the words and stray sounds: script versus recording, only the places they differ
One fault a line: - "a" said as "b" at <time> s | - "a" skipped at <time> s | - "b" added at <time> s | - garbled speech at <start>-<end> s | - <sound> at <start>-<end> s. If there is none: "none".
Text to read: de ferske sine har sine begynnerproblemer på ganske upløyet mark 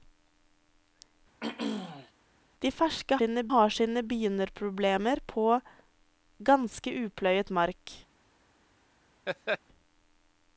- throat clearing at 1.4-2.1 s
- laugh at 9.3-9.6 s